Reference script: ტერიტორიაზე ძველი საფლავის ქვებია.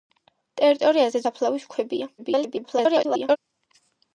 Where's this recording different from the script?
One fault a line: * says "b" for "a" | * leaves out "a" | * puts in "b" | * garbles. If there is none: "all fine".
* leaves out "ძველი"
* garbles